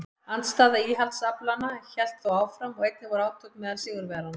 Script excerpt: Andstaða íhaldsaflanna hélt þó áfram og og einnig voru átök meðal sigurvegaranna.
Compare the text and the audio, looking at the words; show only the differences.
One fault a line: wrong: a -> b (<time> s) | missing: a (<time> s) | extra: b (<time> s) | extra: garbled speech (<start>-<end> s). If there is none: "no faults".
missing: og (2.9 s)